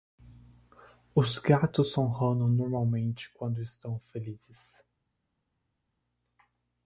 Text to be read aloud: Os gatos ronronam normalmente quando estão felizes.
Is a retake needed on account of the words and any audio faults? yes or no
no